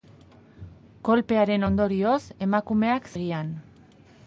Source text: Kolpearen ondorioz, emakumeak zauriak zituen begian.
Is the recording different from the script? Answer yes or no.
yes